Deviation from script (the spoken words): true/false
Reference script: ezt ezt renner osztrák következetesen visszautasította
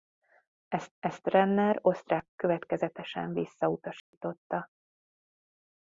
false